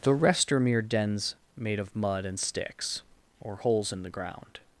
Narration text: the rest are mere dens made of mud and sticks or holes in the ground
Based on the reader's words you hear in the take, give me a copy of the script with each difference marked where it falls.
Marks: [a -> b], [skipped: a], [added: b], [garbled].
the rest are mere dens made of mud and sticks or holes in the ground